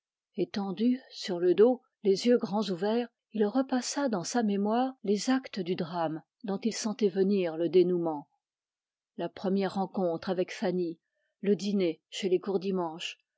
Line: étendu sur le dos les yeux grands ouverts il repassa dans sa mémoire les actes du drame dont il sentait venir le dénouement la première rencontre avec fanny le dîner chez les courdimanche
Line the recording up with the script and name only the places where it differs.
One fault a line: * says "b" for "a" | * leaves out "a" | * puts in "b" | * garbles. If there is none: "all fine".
all fine